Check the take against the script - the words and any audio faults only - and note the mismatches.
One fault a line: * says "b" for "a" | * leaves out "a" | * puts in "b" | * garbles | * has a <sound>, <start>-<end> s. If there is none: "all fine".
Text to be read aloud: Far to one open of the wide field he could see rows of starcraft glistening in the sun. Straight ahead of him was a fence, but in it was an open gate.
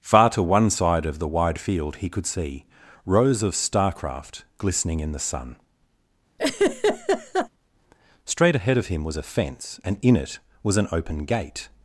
* says "side" for "open"
* has a laugh, 6.4-7.5 s
* says "and" for "but"